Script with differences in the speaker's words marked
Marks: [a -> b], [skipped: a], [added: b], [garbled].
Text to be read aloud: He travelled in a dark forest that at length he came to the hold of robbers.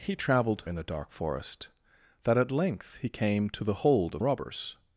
He travelled in a dark forest that at length he came to the hold of robbers.